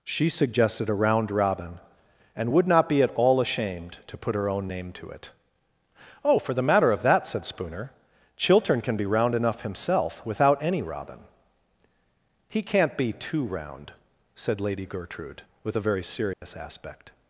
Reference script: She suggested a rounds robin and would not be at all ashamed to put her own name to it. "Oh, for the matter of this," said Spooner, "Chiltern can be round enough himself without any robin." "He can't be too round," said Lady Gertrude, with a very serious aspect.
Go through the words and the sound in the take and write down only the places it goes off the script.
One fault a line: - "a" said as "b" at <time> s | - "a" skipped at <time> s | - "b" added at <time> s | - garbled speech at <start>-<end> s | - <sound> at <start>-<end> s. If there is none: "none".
- "rounds" said as "round" at 0.9 s
- "this" said as "that" at 7.0 s
- dropout at 16.3-16.4 s